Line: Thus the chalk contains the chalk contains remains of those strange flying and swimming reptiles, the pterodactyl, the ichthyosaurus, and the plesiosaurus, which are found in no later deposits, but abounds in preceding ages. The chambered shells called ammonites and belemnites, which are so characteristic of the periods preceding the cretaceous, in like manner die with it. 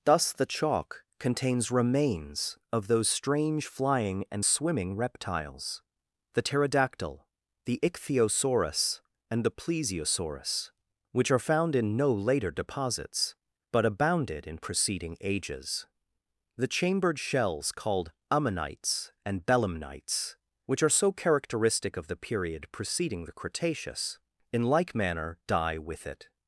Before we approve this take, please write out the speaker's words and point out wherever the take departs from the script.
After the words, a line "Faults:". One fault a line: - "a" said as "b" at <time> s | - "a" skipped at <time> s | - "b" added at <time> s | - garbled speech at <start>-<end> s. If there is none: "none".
Thus the chalk contains remains of those strange flying and swimming reptiles, the pterodactyl, the ichthyosaurus, and the plesiosaurus, which are found in no later deposits, but abounded in preceding ages. The chambered shells called ammonites and belemnites, which are so characteristic of the period preceding the cretaceous, in like manner die with it.
Faults:
- "the chalk contains" skipped at 1.7 s
- "abounds" said as "abounded" at 13.8 s
- "periods" said as "period" at 22.2 s